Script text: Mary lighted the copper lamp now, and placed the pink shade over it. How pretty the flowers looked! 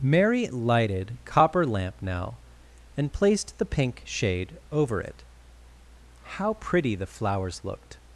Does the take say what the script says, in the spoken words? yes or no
no